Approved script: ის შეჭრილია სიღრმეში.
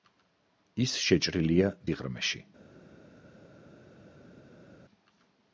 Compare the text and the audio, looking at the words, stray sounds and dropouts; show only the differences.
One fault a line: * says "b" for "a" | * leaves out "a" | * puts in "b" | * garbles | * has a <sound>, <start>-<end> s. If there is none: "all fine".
all fine